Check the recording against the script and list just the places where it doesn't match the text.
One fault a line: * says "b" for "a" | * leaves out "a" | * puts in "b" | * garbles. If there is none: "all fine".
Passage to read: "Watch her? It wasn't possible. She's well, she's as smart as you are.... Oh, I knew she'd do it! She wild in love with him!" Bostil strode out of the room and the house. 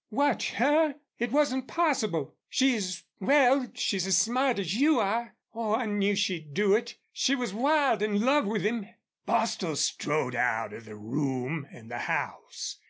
* puts in "was"